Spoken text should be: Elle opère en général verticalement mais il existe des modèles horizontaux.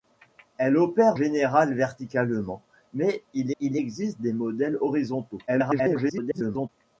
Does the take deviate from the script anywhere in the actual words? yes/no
yes